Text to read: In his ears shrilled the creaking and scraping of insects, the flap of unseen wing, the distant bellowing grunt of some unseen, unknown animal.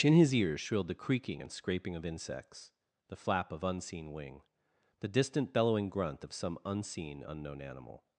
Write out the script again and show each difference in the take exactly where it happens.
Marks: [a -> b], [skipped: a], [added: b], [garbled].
In his ears shrilled the creaking and scraping of insects, the flap of unseen wing, the distant bellowing grunt of some unseen, unknown animal.